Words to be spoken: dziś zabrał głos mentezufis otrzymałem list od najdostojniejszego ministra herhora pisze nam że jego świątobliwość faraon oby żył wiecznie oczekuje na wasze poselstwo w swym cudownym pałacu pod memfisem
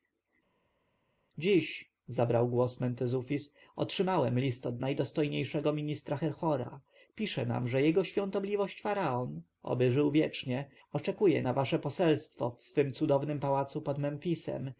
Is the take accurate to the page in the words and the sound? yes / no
yes